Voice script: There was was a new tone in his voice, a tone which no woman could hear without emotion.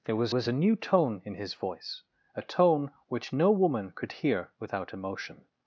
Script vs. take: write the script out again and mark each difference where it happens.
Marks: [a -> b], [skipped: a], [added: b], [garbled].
There was was a new tone in his voice, a tone which no woman could hear without emotion.